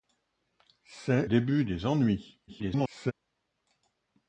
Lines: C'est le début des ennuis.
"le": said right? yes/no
no